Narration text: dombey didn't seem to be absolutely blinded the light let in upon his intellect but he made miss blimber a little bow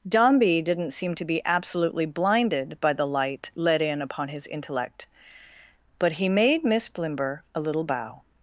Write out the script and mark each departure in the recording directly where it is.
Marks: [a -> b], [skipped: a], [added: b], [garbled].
dombey didn't seem to be absolutely blinded [added: by] the light let in upon his intellect but he made miss blimber a little bow